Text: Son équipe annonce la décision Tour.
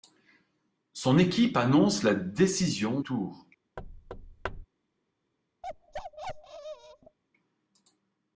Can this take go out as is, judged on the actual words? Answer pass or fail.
pass